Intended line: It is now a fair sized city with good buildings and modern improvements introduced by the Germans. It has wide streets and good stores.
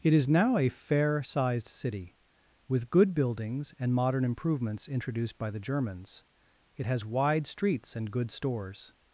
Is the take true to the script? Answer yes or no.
yes